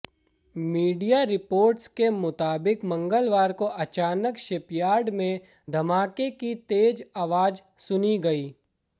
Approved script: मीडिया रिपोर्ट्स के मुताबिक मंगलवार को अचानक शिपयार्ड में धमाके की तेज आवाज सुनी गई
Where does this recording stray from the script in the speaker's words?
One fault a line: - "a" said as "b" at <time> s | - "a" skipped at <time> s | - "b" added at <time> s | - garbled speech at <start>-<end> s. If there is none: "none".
none